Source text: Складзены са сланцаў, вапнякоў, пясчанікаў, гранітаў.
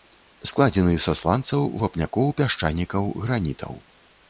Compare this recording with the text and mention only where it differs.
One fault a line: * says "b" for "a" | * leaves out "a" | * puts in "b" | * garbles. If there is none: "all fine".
all fine